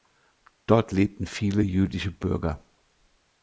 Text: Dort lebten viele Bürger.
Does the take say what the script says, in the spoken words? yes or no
no